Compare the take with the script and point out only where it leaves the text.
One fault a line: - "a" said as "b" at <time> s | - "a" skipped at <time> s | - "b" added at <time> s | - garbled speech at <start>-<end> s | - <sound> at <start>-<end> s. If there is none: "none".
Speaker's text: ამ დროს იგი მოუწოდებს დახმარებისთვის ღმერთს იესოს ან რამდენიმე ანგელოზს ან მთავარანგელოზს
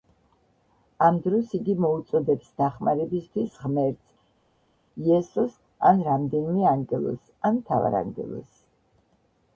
none